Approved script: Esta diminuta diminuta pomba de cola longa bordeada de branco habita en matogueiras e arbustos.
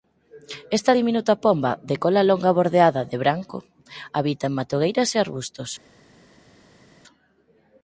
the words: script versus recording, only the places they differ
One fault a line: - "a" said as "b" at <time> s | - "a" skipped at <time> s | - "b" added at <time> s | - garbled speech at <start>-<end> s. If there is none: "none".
- "diminuta" skipped at 1.3 s